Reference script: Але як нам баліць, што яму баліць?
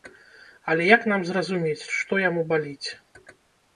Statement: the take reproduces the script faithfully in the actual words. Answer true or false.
false